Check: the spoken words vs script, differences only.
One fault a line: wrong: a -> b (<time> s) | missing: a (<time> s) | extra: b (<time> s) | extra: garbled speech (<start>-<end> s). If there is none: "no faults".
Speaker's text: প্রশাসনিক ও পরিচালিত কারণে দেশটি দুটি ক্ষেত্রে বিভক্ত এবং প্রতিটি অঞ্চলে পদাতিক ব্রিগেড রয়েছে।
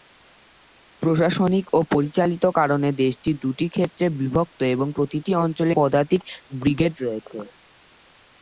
no faults